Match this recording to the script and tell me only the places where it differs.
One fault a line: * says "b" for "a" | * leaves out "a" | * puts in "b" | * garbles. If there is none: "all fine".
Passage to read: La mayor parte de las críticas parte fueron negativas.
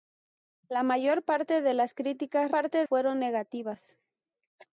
all fine